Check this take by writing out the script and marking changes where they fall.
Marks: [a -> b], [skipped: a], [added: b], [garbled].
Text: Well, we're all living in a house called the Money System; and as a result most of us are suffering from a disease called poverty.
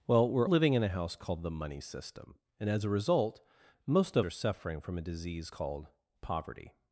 Well, we're [skipped: all] living in a house called the Money System; and as a result most of [skipped: us] are suffering from a disease called poverty.